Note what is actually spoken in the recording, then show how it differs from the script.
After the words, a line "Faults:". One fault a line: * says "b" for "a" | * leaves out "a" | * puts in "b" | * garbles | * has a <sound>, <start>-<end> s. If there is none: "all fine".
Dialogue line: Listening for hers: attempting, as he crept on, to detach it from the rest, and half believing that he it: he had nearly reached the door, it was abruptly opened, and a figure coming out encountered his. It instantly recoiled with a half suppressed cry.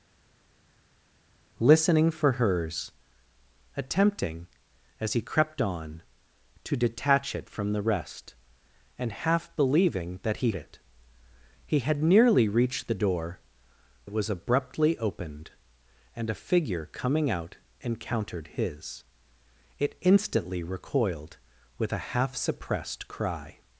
Listening for hers: attempting, as he crept on, to detach it from the rest, and half believing that he it: he had nearly reached the door, it was abruptly opened, and a figure coming out encountered his. It instantly recoiled with a half suppressed cry.
Faults:
all fine